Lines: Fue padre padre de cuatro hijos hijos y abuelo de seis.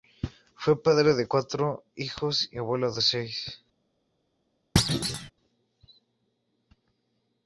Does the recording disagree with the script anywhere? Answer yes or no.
yes